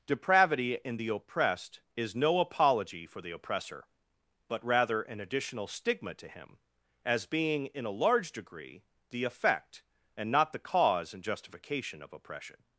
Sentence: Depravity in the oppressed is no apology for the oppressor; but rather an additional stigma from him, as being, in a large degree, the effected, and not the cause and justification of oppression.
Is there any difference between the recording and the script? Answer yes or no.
yes